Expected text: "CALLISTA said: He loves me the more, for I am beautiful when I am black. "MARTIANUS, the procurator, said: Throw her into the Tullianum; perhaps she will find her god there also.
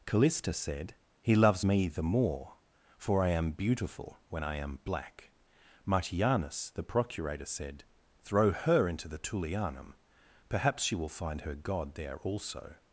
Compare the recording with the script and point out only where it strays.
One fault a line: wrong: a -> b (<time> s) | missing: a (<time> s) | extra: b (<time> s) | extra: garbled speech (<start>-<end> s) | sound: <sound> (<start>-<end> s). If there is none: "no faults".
no faults